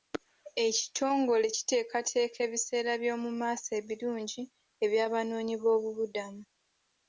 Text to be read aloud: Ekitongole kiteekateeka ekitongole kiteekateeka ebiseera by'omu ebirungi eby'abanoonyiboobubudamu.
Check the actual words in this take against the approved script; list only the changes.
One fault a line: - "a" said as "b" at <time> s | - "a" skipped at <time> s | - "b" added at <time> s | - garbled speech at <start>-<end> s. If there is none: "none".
- "ekitongole kiteekateeka" skipped at 2.4 s
- "maaso" added at 3.4 s